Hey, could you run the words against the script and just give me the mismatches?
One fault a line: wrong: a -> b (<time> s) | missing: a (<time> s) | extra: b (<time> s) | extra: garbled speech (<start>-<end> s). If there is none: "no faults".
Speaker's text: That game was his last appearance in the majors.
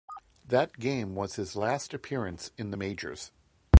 no faults